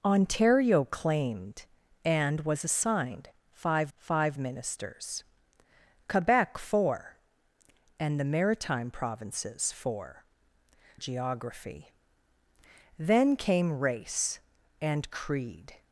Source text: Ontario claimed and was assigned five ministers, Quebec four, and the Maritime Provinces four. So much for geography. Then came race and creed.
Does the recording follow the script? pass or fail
fail